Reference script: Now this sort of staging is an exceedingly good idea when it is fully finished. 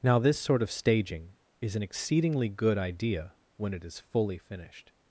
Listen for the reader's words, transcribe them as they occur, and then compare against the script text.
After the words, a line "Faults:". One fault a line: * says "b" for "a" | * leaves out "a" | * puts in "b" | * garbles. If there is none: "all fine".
Now this sort of staging is an exceedingly good idea when it is fully finished.
Faults:
all fine